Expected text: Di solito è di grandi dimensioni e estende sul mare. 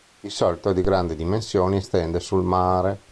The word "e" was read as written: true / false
true